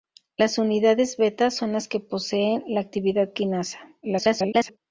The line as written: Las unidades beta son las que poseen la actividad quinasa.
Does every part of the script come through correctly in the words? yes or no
no